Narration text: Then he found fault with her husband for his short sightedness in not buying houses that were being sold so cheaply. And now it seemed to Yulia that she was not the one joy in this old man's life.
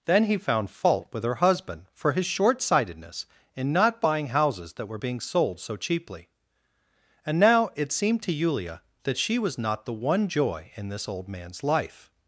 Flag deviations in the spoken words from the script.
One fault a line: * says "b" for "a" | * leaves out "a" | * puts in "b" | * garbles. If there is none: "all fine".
all fine